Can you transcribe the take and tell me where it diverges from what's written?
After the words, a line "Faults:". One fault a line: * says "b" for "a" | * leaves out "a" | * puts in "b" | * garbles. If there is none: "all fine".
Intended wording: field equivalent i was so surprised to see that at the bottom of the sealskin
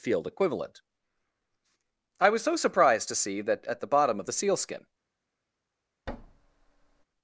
field equivalent i was so surprised to see that at the bottom of the sealskin
Faults:
all fine